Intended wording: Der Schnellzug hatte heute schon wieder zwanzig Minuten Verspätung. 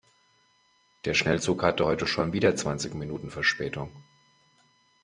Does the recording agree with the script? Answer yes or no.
yes